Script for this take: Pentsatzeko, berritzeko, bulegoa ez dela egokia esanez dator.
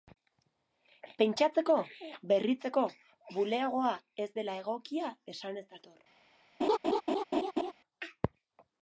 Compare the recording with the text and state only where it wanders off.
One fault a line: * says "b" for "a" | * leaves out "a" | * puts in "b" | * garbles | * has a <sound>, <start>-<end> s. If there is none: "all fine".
* has a laugh, 6.6-7.7 s